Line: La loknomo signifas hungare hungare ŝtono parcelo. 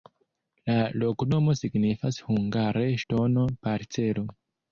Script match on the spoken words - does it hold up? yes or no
no